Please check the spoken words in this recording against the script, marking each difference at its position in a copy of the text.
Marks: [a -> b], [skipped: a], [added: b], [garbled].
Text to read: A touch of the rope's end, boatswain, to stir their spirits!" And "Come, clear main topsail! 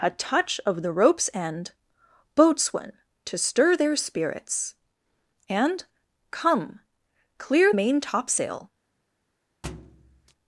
A touch of the rope's end, boatswain, to stir their spirits!" And "Come, clear main topsail!